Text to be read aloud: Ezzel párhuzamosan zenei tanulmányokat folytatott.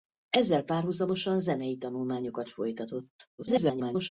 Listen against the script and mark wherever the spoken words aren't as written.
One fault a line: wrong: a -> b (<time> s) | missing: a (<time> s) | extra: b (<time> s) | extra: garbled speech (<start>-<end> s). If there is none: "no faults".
extra: garbled speech (3.4-4.1 s)